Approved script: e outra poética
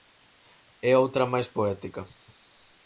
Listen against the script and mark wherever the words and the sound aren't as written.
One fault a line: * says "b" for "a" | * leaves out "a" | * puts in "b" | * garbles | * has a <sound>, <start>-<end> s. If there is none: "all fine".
* puts in "máis"